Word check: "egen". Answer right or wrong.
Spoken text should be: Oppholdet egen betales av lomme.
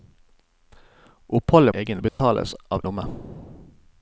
right